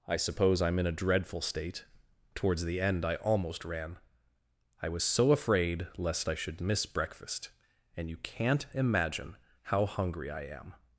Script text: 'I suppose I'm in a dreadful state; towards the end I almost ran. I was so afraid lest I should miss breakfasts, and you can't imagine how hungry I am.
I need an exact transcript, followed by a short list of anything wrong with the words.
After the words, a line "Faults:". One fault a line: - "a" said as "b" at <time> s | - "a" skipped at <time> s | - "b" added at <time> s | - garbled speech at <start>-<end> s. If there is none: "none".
'I suppose I'm in a dreadful state; towards the end I almost ran. I was so afraid lest I should miss breakfast, and you can't imagine how hungry I am.
Faults:
- "breakfasts" said as "breakfast" at 6.9 s